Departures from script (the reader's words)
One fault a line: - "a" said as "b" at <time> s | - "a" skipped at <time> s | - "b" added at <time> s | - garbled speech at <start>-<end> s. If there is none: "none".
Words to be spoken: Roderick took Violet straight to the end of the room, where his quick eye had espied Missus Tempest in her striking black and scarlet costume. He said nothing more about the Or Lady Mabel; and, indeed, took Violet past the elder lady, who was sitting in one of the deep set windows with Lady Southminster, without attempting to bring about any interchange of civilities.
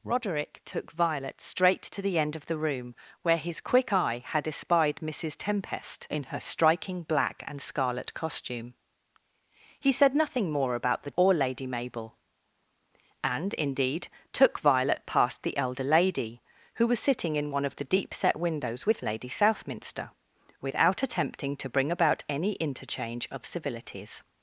none